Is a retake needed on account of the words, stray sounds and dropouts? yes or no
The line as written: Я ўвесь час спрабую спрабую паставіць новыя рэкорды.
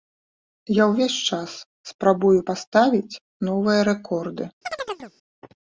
yes